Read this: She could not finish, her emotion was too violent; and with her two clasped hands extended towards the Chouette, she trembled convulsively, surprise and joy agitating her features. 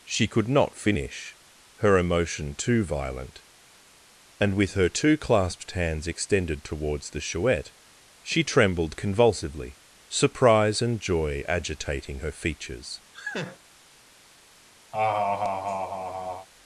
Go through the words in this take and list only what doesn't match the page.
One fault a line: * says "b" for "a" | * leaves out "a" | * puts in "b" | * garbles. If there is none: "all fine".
* leaves out "was"